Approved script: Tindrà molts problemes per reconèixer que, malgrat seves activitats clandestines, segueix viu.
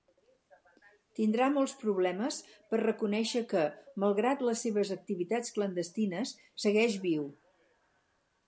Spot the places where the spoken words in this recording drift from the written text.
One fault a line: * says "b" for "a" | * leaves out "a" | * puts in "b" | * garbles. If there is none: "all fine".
* puts in "les"